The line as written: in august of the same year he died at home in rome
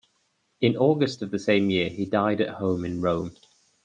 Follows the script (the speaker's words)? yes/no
yes